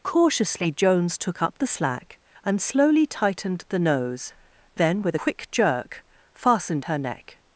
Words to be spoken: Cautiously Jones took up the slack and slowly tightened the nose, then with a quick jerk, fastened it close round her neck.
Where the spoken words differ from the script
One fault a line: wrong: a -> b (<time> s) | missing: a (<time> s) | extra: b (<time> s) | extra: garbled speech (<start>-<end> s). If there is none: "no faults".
missing: a (5.2 s)
missing: it close round (6.8 s)